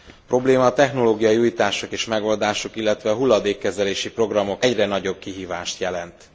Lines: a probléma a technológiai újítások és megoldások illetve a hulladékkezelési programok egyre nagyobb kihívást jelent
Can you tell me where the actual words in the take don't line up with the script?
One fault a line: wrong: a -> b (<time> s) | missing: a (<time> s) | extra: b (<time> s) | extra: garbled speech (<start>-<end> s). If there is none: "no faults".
no faults